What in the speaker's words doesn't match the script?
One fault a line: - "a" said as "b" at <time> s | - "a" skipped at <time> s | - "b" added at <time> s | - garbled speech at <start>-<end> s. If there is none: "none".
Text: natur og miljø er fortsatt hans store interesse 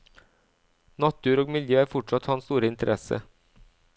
none